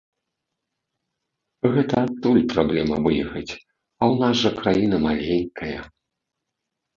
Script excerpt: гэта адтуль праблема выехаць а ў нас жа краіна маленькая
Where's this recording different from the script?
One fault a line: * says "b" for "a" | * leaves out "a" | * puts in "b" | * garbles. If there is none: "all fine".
all fine